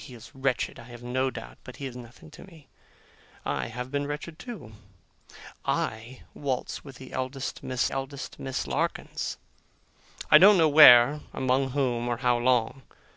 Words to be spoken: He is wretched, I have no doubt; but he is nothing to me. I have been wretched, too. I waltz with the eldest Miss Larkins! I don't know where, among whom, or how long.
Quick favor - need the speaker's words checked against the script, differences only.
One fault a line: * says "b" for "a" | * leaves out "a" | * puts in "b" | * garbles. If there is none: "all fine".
* puts in "eldest Miss"